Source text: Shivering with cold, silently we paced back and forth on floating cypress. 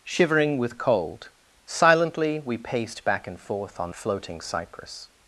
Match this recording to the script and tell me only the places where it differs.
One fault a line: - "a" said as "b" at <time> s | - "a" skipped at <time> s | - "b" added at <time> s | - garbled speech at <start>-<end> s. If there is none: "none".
none